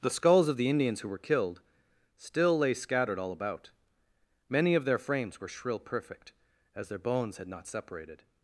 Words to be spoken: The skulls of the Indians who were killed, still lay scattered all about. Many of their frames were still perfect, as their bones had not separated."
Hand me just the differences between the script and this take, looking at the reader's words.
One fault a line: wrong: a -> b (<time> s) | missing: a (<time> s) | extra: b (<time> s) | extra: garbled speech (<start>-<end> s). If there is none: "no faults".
wrong: still -> shrill (5.5 s)